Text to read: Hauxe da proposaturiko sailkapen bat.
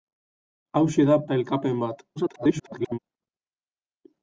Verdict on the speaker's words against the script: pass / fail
fail